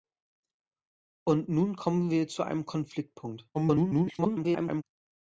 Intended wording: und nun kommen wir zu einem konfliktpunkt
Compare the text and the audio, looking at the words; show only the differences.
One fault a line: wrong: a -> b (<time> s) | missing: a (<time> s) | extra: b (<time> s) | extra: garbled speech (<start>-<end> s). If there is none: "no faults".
extra: garbled speech (3.5-4.8 s)